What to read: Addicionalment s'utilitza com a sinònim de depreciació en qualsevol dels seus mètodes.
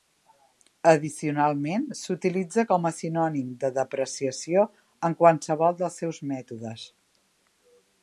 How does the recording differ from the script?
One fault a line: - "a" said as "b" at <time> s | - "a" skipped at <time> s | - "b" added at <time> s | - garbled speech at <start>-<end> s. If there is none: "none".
none